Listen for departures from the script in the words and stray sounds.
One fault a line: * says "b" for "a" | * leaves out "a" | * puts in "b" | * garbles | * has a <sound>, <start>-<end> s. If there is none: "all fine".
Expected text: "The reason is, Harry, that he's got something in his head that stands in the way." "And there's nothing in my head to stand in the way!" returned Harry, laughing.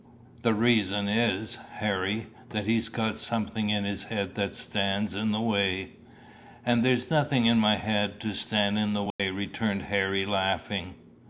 * has a dropout, 9.1-9.2 s